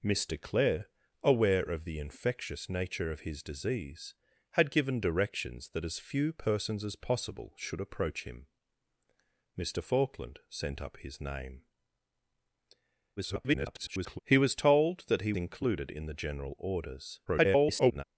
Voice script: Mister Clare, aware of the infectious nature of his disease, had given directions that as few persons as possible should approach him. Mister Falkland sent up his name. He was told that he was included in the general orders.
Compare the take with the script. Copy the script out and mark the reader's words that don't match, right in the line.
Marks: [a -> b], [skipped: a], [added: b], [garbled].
Mister Clare, aware of the infectious nature of his disease, had given directions that as few persons as possible should approach him. Mister Falkland sent up his name. [garbled] He was told that he [skipped: was] included in the general orders. [garbled]